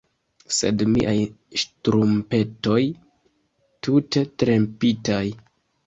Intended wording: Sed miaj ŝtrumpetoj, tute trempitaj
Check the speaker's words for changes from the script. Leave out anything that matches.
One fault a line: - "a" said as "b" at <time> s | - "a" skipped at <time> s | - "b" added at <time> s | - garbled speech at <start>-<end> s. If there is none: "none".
none